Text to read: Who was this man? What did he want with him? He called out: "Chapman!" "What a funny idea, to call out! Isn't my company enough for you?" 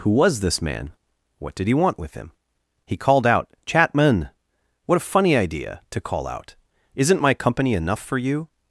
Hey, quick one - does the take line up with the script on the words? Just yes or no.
yes